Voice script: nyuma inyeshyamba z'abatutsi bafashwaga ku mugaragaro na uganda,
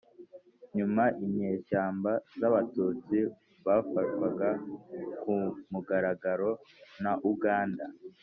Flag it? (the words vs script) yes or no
no